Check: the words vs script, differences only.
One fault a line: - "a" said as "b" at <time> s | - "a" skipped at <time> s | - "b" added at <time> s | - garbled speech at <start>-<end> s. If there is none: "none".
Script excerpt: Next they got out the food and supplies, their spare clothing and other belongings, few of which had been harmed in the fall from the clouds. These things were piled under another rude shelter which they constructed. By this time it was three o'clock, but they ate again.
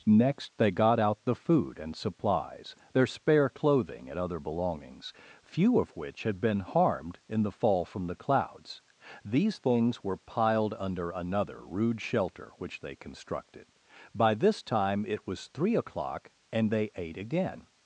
- "but" said as "and" at 16.5 s